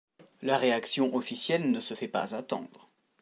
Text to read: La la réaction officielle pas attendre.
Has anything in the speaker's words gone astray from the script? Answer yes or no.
yes